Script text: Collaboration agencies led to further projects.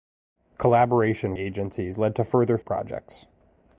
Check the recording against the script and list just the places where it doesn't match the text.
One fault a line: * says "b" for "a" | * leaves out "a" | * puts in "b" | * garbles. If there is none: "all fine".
all fine